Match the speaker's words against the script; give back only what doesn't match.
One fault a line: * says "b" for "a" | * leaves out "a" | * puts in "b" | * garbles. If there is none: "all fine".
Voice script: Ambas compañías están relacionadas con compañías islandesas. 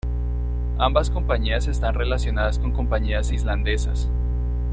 all fine